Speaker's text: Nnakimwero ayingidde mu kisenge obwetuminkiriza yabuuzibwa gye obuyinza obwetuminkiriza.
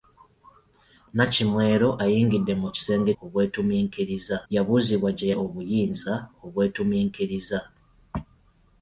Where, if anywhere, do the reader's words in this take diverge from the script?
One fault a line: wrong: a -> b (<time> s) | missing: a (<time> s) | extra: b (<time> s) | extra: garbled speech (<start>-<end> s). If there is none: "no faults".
no faults